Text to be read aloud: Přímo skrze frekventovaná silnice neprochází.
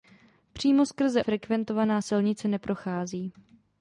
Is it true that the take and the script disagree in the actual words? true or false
false